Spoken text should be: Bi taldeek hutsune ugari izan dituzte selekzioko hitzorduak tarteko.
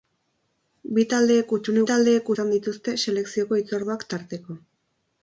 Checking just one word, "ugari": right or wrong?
wrong